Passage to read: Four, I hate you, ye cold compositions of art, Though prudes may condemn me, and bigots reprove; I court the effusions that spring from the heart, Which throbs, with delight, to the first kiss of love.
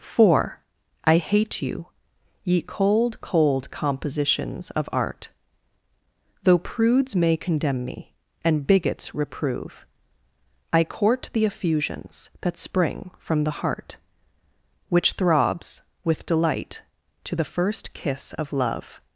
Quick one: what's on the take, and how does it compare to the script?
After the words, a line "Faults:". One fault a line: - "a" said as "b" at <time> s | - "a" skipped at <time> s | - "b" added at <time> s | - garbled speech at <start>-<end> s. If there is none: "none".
Four, I hate you, ye cold cold compositions of art, Though prudes may condemn me, and bigots reprove; I court the effusions that spring from the heart, Which throbs, with delight, to the first kiss of love.
Faults:
- "cold" added at 3.2 s